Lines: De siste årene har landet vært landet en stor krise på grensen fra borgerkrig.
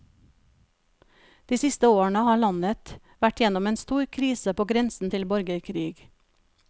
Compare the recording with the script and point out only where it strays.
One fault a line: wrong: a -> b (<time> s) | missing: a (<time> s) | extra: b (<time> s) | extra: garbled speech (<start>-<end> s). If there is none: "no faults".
wrong: landet -> gjennom (3.4 s)
wrong: fra -> til (5.1 s)